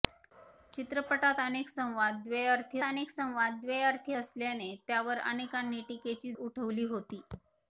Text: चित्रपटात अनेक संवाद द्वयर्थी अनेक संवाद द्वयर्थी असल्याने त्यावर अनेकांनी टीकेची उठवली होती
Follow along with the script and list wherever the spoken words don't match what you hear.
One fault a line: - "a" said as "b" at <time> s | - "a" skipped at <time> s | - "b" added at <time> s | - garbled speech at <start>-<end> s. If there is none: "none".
none